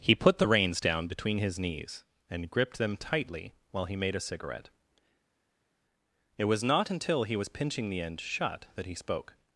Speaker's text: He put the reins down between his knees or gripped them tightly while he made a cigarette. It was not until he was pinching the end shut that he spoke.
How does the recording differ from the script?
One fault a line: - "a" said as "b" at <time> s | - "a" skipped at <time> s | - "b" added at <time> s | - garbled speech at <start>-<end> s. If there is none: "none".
- "or" said as "and" at 2.3 s